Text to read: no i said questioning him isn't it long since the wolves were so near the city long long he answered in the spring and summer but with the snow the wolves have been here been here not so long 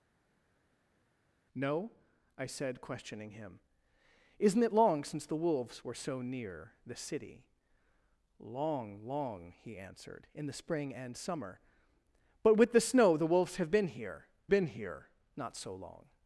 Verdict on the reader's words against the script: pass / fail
pass